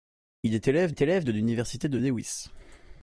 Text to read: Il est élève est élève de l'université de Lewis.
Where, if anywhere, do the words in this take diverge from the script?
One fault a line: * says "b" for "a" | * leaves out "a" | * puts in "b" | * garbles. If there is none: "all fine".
all fine